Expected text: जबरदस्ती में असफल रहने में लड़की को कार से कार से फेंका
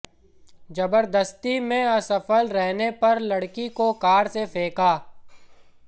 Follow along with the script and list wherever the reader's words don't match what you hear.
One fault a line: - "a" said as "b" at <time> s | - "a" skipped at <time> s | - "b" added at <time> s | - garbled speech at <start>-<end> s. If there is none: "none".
- "में" said as "पर" at 3.0 s
- "कार से" skipped at 4.5 s